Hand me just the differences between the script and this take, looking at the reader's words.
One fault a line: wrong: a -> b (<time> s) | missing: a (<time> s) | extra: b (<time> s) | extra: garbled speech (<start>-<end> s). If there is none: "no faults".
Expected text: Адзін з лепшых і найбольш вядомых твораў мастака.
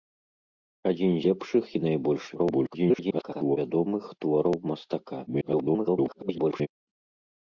missing: з (1.1 s)
extra: garbled speech (2.3-3.6 s)
extra: garbled speech (5.3-6.7 s)